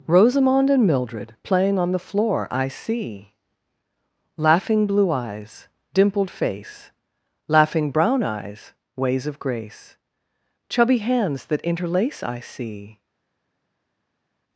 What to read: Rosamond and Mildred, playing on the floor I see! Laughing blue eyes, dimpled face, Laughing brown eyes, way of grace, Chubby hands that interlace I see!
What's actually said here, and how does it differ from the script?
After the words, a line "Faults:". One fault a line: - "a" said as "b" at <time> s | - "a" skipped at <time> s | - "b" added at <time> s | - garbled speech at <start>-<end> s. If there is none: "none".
Rosamond and Mildred, playing on the floor I see! Laughing blue eyes, dimpled face, Laughing brown eyes, ways of grace, Chubby hands that interlace I see!
Faults:
- "way" said as "ways" at 9.0 s